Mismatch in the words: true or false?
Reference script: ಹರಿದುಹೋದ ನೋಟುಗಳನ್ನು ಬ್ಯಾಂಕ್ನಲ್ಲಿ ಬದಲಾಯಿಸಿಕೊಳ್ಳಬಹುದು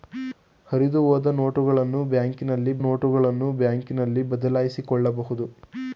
true